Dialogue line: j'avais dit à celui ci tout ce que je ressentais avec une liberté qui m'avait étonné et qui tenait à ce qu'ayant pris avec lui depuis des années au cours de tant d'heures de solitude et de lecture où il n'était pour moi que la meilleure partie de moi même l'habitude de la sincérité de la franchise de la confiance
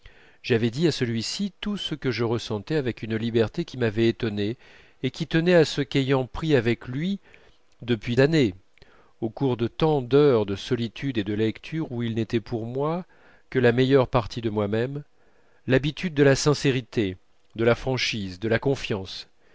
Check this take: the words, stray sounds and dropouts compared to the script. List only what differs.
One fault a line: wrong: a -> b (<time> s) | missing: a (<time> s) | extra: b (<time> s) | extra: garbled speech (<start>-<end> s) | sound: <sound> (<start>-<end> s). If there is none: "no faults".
missing: des (8.2 s)